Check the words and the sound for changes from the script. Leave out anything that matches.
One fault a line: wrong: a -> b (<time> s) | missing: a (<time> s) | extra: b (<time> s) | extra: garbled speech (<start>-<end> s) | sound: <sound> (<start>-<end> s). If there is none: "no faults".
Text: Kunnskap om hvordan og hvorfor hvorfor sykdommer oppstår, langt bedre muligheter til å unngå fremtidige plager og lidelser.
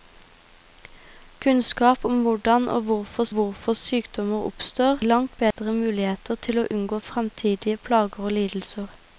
sound: dropout (5.5-5.6 s)